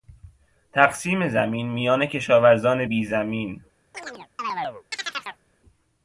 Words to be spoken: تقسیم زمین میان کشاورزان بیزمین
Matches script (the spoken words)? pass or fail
pass